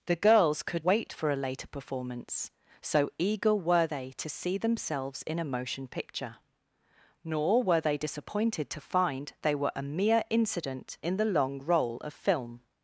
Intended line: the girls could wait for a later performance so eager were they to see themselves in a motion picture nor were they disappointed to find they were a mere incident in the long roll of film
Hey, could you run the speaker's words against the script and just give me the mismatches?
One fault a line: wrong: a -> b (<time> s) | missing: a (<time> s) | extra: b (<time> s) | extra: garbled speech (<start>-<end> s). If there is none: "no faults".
no faults